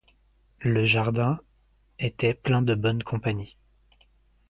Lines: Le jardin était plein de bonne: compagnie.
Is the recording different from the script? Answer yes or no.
no